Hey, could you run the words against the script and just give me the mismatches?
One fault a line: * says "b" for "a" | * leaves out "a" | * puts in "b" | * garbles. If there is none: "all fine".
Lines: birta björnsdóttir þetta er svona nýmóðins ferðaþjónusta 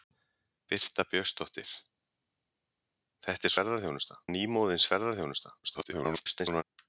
* says "ferðaþjónusta" for "svona"
* garbles